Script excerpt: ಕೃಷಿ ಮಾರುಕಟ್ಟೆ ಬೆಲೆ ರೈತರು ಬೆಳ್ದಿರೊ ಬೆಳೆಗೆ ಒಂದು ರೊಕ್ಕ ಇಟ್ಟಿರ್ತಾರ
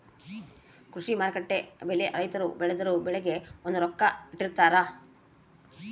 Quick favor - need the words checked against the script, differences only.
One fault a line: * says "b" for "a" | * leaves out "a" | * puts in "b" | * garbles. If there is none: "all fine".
all fine